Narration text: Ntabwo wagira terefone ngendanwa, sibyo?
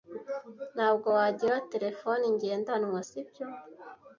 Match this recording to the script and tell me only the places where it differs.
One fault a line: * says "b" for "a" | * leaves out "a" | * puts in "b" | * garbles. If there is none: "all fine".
all fine